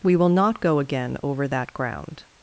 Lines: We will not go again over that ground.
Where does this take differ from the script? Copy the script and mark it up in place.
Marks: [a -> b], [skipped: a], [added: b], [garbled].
We will not go again over that ground.